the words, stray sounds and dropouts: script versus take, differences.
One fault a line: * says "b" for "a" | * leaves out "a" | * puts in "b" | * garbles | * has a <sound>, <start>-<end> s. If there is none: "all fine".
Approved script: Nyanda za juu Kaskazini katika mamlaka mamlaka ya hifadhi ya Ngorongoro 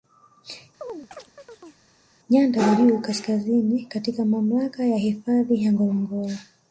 * has a chirp, 0.8-1.9 s
* leaves out "mamlaka"